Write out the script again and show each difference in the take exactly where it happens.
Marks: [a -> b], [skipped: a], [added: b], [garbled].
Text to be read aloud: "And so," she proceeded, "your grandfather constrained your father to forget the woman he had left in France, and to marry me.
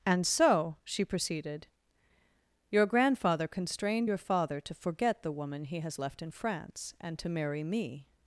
"And so," she proceeded, "your grandfather constrained your father to forget the woman he [had -> has] left in France, and to marry me.